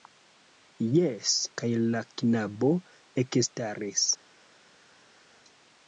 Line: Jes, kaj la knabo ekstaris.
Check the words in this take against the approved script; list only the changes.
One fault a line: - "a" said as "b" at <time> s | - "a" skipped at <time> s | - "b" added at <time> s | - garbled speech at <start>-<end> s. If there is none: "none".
none